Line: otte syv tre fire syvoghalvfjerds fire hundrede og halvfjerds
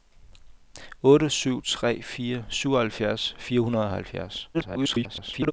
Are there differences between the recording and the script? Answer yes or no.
yes